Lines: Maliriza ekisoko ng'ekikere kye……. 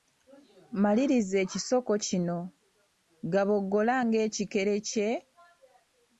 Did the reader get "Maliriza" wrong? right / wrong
right